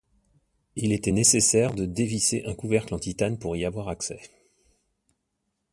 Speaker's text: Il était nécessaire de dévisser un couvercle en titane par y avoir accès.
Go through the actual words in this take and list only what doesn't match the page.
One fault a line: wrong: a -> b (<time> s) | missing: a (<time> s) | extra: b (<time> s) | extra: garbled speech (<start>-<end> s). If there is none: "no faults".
wrong: par -> pour (3.4 s)